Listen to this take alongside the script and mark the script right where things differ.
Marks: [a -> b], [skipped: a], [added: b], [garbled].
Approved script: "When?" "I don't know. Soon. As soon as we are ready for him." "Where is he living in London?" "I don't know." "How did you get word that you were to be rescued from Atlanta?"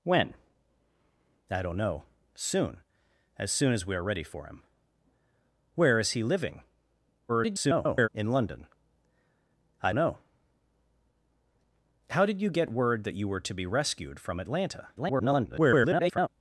"When?" "I don't know. Soon. As soon as we are ready for him." "Where is he living [garbled] in London?" "I [skipped: don't] know." "How did you get word that you were to be rescued from Atlanta?" [garbled]